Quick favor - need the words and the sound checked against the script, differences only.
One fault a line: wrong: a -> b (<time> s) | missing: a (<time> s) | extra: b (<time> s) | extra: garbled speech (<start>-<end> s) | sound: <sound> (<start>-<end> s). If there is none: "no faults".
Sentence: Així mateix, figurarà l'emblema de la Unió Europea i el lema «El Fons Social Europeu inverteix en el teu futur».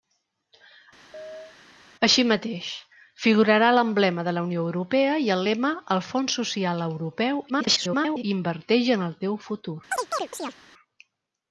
sound: chirp (1.1-1.6 s)
extra: garbled speech (7.5-8.2 s)
sound: chirp (9.9-10.6 s)